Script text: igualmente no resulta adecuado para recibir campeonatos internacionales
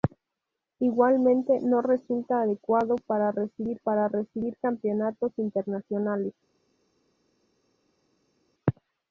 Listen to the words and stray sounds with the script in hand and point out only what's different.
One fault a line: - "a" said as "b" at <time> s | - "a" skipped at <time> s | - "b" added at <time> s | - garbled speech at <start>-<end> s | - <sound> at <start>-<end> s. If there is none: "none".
- "para recibir" added at 3.8 s